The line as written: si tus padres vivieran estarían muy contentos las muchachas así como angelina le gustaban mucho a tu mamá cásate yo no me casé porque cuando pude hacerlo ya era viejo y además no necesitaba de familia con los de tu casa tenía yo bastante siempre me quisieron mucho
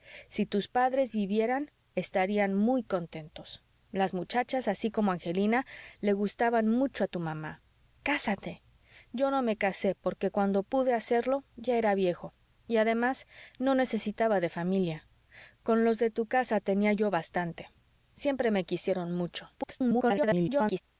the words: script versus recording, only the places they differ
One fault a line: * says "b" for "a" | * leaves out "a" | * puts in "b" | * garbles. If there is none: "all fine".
* garbles